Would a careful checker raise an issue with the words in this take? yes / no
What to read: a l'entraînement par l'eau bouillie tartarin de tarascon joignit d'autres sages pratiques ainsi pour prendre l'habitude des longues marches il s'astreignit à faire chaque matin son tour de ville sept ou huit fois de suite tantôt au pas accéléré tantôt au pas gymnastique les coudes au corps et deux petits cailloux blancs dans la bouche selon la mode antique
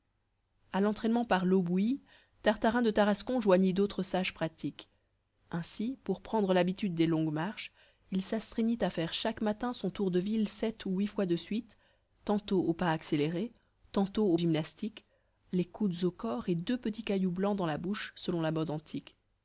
yes